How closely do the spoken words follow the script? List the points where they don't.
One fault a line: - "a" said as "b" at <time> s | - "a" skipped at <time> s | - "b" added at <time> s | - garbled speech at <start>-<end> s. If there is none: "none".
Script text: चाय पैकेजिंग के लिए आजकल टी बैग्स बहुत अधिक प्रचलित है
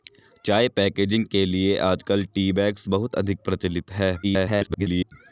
- garbled speech at 4.2-5.1 s